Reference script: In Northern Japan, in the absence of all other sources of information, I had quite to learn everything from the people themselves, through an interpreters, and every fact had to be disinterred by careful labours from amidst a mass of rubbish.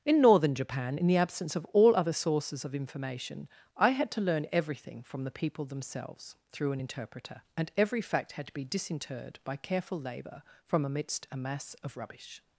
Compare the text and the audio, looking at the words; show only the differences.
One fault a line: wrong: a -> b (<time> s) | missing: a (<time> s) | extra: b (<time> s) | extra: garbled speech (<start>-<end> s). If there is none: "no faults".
missing: quite (4.1 s)
wrong: interpreters -> interpreter (6.8 s)
wrong: labours -> labour (10.0 s)